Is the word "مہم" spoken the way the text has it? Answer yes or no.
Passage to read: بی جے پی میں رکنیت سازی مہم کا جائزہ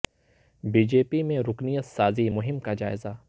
yes